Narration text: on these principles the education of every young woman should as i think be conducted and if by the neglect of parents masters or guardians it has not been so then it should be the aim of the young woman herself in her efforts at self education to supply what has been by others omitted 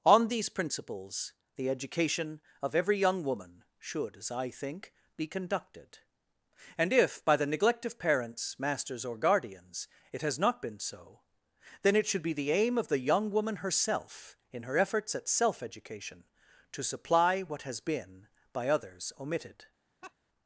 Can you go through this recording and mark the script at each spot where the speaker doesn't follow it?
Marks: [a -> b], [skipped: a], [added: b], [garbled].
on these principles the education of every young woman should as i think be conducted and if by the neglect of parents masters or guardians it has not been so then it should be the aim of the young woman herself in her efforts at self education to supply what has been by others omitted